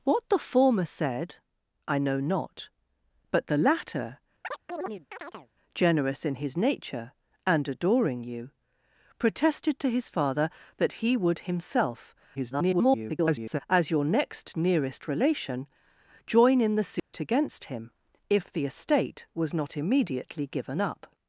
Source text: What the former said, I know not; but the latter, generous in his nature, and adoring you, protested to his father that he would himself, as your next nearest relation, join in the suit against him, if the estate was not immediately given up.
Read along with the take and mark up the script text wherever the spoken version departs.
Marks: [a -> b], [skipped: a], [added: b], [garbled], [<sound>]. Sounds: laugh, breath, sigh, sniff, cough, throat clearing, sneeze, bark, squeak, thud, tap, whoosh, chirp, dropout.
What the former said, I know not; but the latter, [chirp] generous in his nature, and adoring you, protested to his father that he would himself, [garbled] as your next nearest relation, join in the suit [dropout] against him, if the estate was not immediately given up.